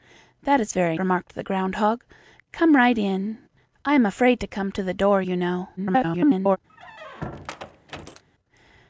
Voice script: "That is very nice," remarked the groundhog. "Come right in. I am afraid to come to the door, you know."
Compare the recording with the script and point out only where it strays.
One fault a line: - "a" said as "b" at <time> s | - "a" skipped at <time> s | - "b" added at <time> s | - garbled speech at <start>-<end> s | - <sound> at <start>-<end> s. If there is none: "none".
- "nice" skipped at 1.0 s
- garbled speech at 5.8-6.6 s
- squeak at 6.7-8.2 s